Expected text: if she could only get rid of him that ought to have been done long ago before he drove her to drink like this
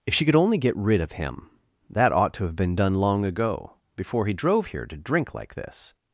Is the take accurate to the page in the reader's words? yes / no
no